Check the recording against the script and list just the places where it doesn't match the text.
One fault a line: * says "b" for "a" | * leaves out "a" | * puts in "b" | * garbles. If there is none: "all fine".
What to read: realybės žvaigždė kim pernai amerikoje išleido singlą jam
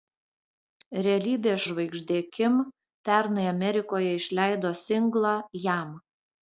all fine